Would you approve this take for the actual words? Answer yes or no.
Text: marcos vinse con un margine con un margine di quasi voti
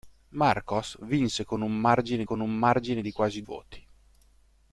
yes